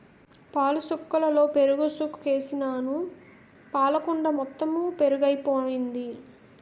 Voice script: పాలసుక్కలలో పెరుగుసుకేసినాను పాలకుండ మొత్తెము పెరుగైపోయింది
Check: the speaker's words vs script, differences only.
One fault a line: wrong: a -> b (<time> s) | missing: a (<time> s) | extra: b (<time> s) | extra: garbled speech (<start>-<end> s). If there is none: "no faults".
no faults